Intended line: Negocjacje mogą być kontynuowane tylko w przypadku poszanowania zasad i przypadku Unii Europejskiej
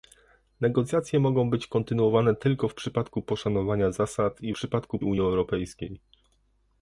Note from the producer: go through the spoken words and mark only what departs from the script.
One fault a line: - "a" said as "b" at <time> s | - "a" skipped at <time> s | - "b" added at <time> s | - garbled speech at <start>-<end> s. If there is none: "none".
none